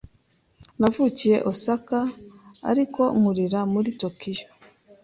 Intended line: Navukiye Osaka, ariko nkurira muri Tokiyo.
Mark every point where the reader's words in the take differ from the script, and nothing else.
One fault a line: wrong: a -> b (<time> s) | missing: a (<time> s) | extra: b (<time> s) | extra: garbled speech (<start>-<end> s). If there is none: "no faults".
no faults